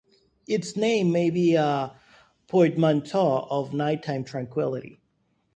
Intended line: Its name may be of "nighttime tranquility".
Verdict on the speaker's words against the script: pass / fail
fail